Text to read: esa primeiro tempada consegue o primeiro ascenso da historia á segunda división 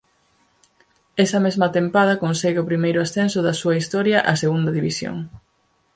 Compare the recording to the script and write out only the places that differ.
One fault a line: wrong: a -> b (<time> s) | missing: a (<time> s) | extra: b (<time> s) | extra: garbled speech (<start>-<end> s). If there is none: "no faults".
wrong: primeiro -> mesma (1.4 s)
extra: súa (3.6 s)